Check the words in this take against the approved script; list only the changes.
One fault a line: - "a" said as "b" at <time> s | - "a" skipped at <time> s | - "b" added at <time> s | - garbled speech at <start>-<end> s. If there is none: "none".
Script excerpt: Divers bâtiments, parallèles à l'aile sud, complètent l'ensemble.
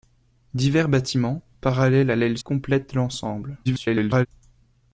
- "sud" skipped at 2.4 s
- garbled speech at 3.6-4.3 s